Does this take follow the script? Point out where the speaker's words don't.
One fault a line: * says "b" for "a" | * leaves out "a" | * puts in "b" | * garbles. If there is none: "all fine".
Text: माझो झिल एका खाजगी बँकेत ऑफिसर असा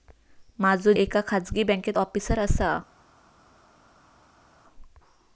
* leaves out "झिल"